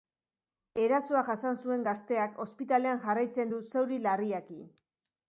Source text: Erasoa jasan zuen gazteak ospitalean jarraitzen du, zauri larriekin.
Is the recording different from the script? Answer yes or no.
no